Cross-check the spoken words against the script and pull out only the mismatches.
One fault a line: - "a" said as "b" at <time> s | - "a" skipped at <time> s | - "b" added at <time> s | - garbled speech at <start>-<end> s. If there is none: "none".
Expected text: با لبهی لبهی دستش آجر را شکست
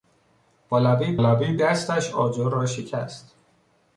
none